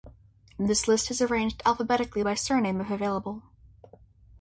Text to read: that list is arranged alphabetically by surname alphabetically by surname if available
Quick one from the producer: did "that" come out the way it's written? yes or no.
no